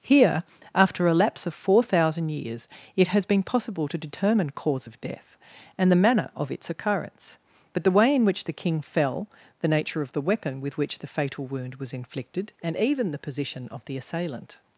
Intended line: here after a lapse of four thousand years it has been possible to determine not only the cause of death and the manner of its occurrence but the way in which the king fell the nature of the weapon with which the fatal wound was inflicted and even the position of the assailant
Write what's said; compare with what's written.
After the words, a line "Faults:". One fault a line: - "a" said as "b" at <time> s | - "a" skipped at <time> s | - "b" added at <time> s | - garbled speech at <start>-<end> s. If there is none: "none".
here after a lapse of four thousand years it has been possible to determine cause of death and the manner of its occurrence but the way in which the king fell the nature of the weapon with which the fatal wound was inflicted and even the position of the assailant
Faults:
- "not only the" skipped at 4.5 s